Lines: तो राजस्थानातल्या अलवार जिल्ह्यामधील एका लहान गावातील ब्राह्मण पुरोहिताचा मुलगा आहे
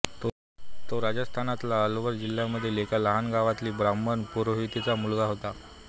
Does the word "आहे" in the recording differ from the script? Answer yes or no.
yes